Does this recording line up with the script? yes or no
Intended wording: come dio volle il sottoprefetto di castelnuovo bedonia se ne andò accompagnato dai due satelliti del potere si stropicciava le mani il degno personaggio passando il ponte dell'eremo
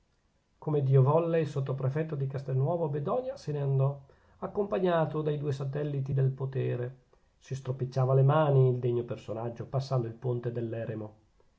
yes